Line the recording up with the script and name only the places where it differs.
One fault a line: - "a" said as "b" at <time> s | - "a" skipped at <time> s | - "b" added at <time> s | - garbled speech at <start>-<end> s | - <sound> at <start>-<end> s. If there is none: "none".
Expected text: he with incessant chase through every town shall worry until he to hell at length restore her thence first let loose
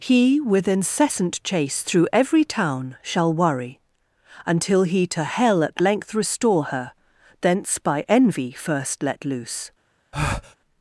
- "by envy" added at 7.8 s
- breath at 10.1-10.6 s